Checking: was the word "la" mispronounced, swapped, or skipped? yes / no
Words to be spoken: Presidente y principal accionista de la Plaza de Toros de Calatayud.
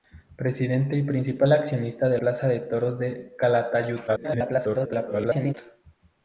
yes